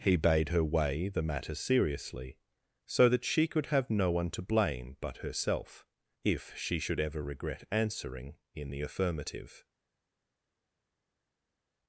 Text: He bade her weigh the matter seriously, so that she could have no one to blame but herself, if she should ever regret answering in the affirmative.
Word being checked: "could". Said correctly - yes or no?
yes